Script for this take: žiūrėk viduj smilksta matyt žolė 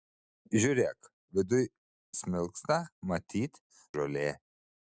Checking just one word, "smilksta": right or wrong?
right